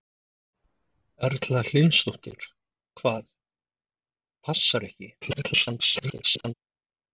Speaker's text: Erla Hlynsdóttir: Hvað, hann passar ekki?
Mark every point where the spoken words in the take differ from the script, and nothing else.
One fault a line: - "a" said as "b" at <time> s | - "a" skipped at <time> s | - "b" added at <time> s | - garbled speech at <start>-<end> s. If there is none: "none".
- "hann" skipped at 3.3 s
- garbled speech at 5.2-6.5 s